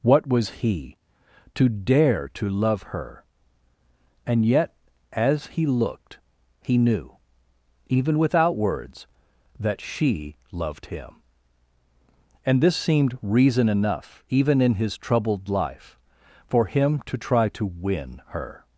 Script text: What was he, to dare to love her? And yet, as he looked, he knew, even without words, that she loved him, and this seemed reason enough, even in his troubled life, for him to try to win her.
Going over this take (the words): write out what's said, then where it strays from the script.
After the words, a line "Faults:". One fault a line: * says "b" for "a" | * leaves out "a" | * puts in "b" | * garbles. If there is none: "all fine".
What was he, to dare to love her? And yet, as he looked, he knew, even without words, that she loved him, and this seemed reason enough, even in his troubled life, for him to try to win her.
Faults:
all fine